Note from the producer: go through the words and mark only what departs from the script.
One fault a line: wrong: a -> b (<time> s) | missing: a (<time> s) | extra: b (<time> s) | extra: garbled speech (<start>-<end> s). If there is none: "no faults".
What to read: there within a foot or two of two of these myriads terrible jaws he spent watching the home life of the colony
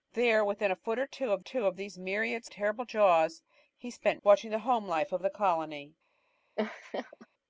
no faults